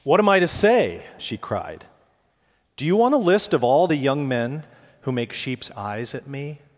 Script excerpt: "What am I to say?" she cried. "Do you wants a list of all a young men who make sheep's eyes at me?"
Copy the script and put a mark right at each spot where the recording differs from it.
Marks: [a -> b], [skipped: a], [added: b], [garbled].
"What am I to say?" she cried. "Do you [wants -> want] a list of all [a -> the] young men who make sheep's eyes at me?"